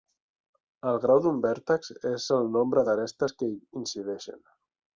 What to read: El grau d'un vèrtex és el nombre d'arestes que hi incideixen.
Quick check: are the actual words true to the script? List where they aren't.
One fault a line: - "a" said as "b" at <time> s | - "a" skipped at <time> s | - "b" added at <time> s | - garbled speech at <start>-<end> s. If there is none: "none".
none